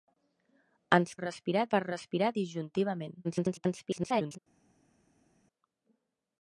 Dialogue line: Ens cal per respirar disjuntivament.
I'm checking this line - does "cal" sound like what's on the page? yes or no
no